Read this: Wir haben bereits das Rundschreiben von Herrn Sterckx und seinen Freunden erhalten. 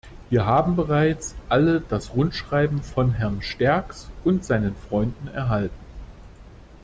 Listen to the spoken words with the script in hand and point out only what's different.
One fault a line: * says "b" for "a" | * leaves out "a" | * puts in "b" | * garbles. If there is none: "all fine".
* puts in "alle"